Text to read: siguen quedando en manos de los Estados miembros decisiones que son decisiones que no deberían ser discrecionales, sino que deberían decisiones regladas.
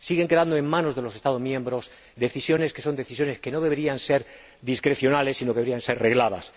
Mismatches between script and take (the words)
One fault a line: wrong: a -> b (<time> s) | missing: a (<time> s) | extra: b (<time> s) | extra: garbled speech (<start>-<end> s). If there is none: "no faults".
wrong: decisiones -> ser (5.8 s)